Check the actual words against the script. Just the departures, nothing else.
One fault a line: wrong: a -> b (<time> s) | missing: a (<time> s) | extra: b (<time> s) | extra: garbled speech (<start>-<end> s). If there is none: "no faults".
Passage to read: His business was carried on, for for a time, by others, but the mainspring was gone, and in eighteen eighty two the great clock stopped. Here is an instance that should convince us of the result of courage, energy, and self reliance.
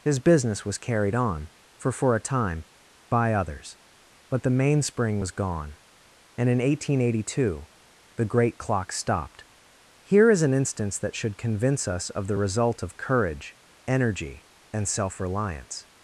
no faults